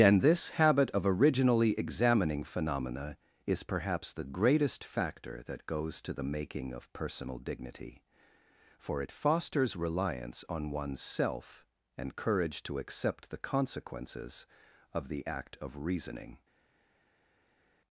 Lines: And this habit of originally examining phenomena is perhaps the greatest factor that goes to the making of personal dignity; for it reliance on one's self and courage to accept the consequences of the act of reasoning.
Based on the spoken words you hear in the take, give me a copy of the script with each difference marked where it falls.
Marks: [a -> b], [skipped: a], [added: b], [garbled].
And this habit of originally examining phenomena is perhaps the greatest factor that goes to the making of personal dignity; for it [added: fosters] reliance on one's self and courage to accept the consequences of the act of reasoning.